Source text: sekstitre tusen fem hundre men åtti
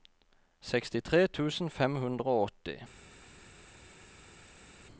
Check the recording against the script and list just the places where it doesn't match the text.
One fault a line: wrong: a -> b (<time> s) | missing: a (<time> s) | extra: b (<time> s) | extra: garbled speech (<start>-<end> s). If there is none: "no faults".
wrong: men -> og (2.4 s)